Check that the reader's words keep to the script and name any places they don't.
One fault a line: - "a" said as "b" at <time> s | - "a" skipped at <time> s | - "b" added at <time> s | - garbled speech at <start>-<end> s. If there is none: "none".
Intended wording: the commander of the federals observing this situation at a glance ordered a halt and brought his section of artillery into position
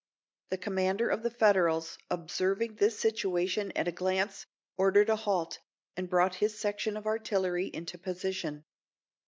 none